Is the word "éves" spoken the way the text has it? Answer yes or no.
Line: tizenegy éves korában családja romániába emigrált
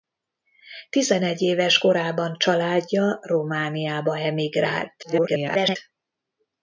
yes